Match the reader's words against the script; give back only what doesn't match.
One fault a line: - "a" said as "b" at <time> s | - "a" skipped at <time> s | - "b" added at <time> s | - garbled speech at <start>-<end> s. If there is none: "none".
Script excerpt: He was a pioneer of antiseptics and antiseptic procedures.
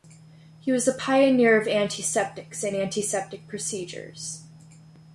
none